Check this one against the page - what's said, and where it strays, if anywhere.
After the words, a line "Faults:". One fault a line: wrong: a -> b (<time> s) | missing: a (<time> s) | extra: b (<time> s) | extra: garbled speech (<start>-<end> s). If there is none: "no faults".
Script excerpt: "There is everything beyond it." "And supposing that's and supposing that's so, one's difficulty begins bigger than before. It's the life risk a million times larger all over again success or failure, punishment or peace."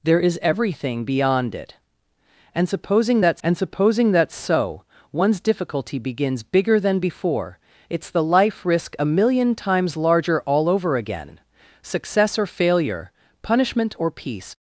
"There is everything beyond it." "And supposing that's and supposing that's so, one's difficulty begins bigger than before. It's the life risk a million times larger all over again success or failure, punishment or peace."
Faults:
no faults